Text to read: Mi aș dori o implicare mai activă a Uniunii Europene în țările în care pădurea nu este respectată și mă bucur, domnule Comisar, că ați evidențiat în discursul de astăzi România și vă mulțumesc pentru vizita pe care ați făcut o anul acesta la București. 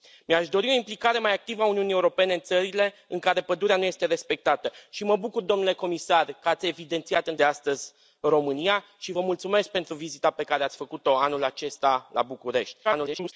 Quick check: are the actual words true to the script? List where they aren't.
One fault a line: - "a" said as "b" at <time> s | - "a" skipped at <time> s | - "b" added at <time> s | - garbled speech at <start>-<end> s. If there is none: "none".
- "discursul" skipped at 7.3 s
- garbled speech at 12.8-13.3 s